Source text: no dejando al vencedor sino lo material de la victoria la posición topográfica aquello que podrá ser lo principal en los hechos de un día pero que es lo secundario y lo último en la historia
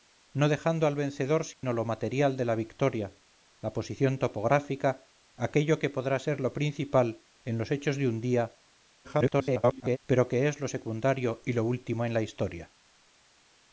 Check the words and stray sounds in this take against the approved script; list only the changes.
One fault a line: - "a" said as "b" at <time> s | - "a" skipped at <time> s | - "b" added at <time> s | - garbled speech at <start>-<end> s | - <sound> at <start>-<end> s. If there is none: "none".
- dropout at 1.5-1.6 s
- garbled speech at 9.0-10.0 s